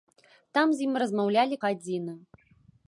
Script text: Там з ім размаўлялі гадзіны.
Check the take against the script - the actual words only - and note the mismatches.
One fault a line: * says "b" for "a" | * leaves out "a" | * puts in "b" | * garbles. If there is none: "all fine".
all fine